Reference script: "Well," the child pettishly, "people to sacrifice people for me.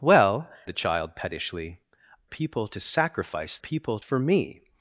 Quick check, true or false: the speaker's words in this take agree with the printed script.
true